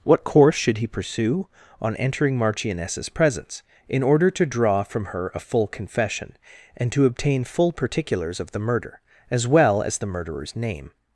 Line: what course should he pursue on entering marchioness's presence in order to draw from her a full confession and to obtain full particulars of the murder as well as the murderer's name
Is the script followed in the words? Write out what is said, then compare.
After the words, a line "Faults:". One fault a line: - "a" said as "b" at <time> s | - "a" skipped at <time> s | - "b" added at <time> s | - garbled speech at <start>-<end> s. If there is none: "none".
what course should he pursue on entering marchioness's presence in order to draw from her a full confession and to obtain full particulars of the murder as well as the murderer's name
Faults:
none